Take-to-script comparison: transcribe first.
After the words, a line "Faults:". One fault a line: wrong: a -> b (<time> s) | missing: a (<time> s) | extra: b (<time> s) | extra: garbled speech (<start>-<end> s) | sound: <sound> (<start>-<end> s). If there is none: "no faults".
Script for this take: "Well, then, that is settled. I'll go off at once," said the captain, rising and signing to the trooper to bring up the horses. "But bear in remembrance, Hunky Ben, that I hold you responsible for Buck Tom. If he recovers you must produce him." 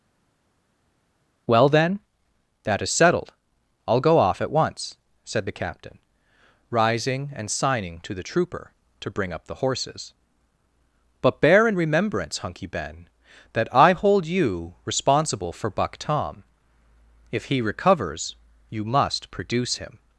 "Well, then, that is settled. I'll go off at once," said the captain, rising and signing to the trooper to bring up the horses. "But bear in remembrance, Hunky Ben, that I hold you responsible for Buck Tom. If he recovers you must produce him."
Faults:
no faults